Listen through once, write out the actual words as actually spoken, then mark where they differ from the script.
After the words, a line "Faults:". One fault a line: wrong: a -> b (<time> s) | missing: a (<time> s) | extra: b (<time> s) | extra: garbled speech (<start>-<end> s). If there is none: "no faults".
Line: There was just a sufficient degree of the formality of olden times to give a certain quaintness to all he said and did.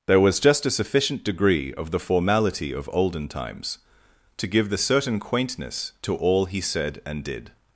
There was just a sufficient degree of the formality of olden times to give the certain quaintness to all he said and did.
Faults:
wrong: a -> the (4.7 s)